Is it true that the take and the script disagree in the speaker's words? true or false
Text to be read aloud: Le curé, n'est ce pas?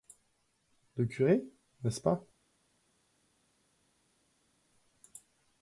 false